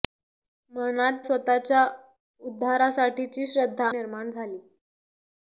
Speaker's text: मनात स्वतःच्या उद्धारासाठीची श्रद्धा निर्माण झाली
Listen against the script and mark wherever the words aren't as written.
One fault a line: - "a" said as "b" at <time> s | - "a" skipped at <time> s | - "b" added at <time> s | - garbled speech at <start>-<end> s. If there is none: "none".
none